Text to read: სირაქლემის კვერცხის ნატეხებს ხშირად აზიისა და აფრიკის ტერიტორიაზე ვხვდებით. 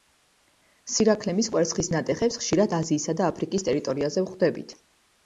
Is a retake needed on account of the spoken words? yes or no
no